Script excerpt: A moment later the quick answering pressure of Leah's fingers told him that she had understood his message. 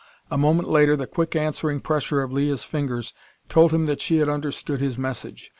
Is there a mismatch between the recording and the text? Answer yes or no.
no